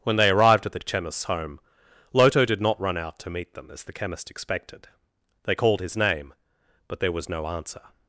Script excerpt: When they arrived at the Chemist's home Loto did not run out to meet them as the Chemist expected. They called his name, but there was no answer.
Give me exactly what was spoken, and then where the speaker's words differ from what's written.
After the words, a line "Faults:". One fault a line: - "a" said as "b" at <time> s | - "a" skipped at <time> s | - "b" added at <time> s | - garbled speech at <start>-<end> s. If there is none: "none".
When they arrived at the Chemist's home Loto did not run out to meet them as the Chemist expected. They called his name, but there was no answer.
Faults:
none